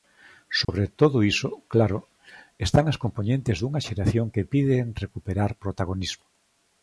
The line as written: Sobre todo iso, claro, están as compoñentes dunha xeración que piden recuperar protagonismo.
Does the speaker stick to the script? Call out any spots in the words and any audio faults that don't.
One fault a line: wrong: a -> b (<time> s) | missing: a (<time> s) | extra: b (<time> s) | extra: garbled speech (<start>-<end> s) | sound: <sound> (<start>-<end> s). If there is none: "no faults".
sound: dropout (0.6-0.7 s)